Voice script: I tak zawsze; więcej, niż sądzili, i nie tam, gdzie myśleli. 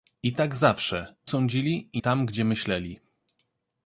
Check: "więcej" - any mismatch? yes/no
yes